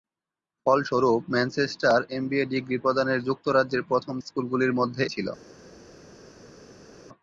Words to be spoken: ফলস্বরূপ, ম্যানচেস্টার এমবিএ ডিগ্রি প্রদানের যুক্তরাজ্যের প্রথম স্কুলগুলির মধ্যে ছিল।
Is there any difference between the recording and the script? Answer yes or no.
no